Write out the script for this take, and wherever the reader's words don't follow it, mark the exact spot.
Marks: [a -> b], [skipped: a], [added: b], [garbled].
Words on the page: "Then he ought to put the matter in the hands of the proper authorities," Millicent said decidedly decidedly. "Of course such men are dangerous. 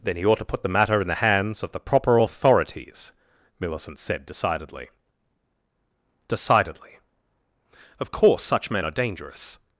"Then he ought to put the matter in the hands of the proper authorities," Millicent said decidedly decidedly. "Of course such men are dangerous.